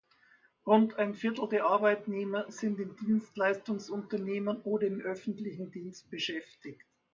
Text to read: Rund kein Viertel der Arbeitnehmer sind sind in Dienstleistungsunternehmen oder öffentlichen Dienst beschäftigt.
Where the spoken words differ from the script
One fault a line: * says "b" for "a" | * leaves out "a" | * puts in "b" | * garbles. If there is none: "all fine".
* says "ein" for "kein"
* leaves out "sind"
* puts in "im"